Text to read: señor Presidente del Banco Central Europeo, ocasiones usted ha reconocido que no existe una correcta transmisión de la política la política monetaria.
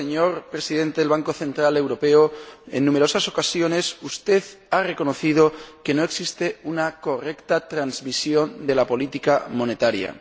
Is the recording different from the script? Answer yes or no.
yes